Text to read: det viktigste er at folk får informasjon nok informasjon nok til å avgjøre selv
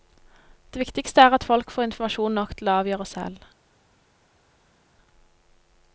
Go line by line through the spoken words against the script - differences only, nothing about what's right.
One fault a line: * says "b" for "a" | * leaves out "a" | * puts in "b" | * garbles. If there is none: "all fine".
* leaves out "informasjon nok"